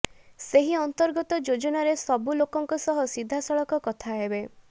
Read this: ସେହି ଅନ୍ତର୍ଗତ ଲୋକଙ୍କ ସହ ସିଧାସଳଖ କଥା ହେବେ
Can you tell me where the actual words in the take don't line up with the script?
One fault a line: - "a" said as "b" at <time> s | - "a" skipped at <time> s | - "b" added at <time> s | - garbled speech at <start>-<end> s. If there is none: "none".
- "ଯୋଜନାରେ ସବୁ" added at 1.4 s